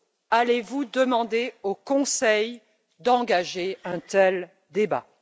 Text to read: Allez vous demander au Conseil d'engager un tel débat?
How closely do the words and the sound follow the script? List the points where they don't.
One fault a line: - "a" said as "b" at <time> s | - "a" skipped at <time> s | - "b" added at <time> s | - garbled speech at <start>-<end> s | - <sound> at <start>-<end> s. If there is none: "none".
none